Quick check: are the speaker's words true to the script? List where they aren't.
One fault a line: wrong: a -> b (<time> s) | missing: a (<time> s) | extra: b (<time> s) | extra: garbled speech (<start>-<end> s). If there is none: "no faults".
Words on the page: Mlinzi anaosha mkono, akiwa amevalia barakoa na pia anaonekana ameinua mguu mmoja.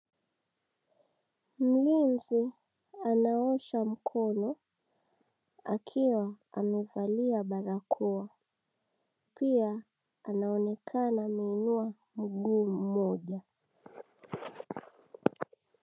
missing: na (8.3 s)